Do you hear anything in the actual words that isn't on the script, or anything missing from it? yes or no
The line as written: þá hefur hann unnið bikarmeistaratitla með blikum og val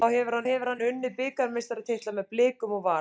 yes